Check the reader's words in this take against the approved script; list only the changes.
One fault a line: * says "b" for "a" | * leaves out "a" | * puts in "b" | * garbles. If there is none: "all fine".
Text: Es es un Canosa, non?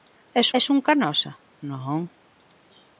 all fine